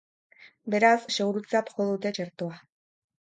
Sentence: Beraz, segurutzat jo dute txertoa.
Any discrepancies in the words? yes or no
no